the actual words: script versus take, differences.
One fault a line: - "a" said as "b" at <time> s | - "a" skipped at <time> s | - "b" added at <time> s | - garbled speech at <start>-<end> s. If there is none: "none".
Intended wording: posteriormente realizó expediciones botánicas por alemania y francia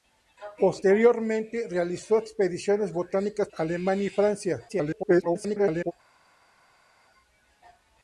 - "por" skipped at 3.5 s
- garbled speech at 4.7-5.9 s